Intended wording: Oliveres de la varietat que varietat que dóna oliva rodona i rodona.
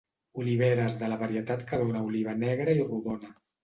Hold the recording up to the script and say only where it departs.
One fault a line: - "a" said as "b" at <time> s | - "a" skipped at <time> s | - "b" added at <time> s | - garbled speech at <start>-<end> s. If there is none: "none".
- "varietat que" skipped at 1.8 s
- "rodona" said as "negra" at 2.4 s